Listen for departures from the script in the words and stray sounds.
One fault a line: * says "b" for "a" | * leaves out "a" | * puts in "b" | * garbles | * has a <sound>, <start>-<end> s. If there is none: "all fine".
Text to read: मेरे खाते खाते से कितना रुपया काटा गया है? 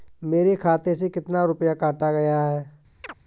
* leaves out "खाते"
* has a chirp, 3.0-3.1 s